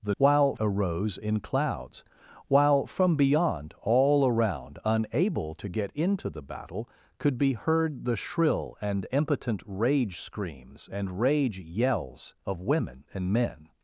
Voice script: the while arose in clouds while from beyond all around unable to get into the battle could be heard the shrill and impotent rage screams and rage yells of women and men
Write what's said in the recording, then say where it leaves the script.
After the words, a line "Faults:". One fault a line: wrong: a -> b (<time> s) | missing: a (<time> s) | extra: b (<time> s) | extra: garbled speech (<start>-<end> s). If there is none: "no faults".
the while arose in clouds while from beyond all around unable to get into the battle could be heard the shrill and impotent rage screams and rage yells of women and men
Faults:
no faults